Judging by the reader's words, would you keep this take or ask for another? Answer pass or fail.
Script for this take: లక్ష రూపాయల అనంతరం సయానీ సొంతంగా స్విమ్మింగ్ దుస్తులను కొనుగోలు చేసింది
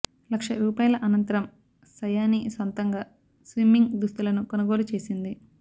pass